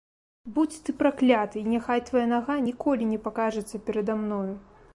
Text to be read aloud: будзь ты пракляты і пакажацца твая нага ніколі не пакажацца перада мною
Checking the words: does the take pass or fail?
fail